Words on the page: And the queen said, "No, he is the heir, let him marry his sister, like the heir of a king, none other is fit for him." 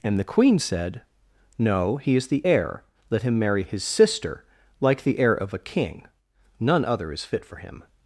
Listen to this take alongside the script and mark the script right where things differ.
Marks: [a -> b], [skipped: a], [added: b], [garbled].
And the queen said, "No, he is the heir, let him marry his sister, like the heir of a king, none other is fit for him."